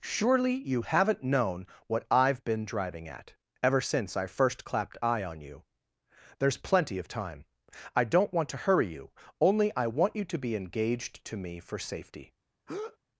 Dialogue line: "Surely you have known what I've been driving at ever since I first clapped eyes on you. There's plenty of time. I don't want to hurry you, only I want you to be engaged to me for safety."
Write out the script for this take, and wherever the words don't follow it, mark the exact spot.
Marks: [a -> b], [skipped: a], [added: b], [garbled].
"Surely you [have -> haven't] known what I've been driving at ever since I first clapped [eyes -> eye] on you. There's plenty of time. I don't want to hurry you, only I want you to be engaged to me for safety."